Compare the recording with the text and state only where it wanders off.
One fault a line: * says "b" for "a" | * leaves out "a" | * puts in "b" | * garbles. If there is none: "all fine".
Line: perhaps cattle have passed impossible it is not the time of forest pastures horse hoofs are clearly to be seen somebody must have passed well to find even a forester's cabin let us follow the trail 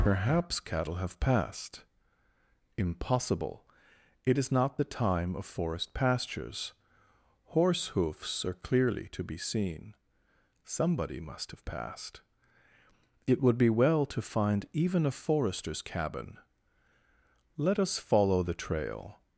* puts in "it would be"